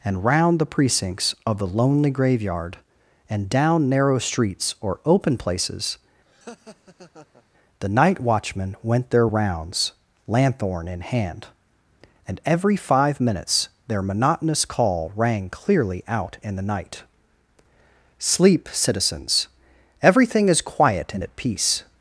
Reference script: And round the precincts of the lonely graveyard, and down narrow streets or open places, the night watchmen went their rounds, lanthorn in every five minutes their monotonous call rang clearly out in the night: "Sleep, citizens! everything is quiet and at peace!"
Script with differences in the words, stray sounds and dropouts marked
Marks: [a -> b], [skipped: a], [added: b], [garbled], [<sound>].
And round the precincts of the lonely graveyard, and down narrow streets or open places, [laugh] the night watchmen went their rounds, lanthorn in [added: hand and] every five minutes their monotonous call rang clearly out in the night: "Sleep, citizens! everything is quiet and at peace!"